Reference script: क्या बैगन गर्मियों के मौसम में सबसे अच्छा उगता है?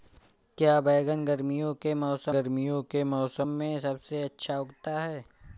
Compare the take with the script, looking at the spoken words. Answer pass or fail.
fail